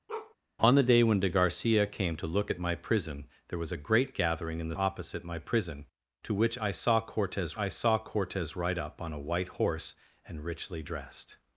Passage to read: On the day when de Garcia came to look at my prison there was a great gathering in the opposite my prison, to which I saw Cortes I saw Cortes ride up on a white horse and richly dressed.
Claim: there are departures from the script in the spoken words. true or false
false